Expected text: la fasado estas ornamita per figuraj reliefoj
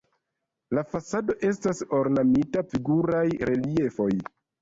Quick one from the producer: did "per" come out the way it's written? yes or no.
no